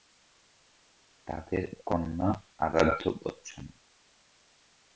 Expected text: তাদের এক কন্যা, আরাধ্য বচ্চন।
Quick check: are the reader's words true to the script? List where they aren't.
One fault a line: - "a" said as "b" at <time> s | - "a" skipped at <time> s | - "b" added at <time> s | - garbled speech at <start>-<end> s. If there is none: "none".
- "এক" skipped at 1.6 s